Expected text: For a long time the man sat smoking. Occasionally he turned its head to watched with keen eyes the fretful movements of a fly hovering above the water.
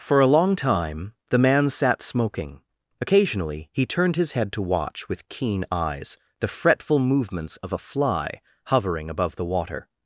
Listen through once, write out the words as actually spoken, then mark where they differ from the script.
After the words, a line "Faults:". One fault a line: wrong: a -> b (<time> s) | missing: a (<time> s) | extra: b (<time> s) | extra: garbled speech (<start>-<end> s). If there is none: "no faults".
For a long time the man sat smoking. Occasionally he turned his head to watch with keen eyes the fretful movements of a fly hovering above the water.
Faults:
wrong: its -> his (4.2 s)
wrong: watched -> watch (4.6 s)